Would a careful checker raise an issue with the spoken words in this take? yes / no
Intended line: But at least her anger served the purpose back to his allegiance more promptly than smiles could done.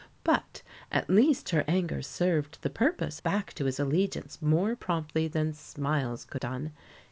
no